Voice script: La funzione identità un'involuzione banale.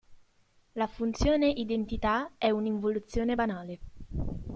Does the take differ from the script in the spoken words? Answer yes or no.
yes